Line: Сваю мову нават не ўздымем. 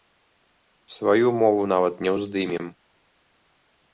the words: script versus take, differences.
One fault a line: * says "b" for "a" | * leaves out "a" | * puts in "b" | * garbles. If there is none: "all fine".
all fine